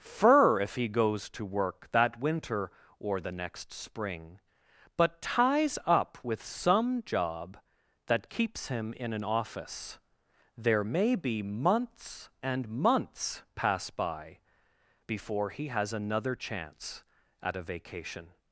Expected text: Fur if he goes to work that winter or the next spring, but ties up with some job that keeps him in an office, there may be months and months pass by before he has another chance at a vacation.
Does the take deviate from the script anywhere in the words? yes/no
no